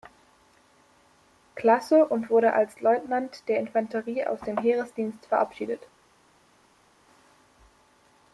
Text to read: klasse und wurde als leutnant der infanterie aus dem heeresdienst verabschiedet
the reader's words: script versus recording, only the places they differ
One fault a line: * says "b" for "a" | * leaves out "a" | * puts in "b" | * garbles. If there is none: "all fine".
all fine